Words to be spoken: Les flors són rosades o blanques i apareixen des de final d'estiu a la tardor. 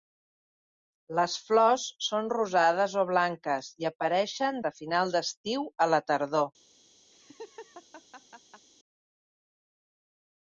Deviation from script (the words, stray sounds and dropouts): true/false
true